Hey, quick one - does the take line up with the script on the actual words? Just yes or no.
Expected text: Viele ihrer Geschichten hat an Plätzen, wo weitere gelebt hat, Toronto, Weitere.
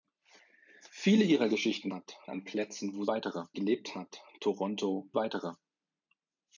yes